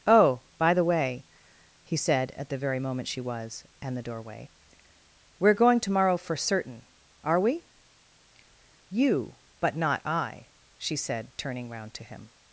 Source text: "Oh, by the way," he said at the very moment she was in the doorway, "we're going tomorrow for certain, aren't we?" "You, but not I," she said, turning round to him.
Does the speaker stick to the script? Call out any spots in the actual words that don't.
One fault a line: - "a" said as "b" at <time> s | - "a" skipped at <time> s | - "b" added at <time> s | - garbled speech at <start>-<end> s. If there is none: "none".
- "in" said as "and" at 3.8 s
- "aren't" said as "are" at 7.2 s